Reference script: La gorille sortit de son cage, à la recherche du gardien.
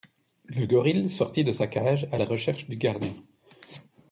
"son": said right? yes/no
no